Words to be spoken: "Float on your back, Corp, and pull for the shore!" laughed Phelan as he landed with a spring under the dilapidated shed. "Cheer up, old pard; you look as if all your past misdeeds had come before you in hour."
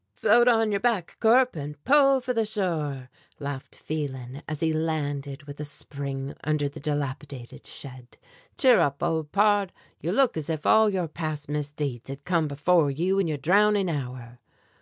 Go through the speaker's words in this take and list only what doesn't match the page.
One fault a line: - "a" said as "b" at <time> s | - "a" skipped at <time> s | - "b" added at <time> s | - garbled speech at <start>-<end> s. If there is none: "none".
- "your drowning" added at 13.3 s